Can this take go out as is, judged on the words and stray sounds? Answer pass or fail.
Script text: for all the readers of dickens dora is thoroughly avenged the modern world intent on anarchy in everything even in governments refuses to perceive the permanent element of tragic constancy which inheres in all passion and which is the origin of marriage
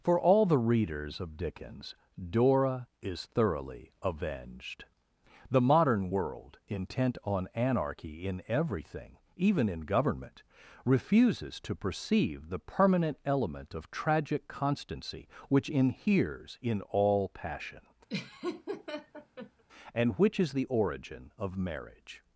fail